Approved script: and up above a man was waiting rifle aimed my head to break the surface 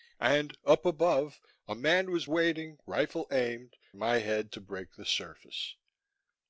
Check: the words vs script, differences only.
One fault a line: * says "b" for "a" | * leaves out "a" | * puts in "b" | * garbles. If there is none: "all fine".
all fine